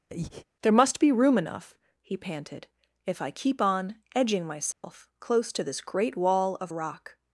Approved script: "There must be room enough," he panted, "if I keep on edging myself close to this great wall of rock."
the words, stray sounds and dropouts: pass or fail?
fail